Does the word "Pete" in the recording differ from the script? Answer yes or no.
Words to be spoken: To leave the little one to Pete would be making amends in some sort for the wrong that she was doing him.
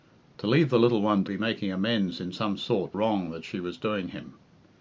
yes